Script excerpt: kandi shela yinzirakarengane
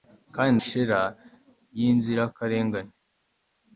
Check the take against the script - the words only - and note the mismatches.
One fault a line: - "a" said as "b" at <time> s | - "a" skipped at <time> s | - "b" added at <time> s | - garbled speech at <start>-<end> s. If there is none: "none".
none